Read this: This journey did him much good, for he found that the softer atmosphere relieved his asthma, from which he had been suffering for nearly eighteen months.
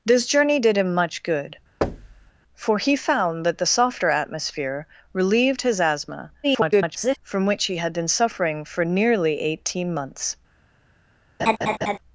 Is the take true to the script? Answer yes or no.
no